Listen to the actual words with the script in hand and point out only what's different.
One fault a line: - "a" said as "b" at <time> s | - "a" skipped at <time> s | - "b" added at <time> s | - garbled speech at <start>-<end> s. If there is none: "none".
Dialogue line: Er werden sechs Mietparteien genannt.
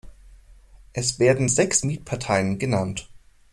- "Er" said as "Es" at 0.9 s